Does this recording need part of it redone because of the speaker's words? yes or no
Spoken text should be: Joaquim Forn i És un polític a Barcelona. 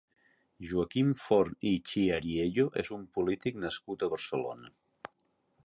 yes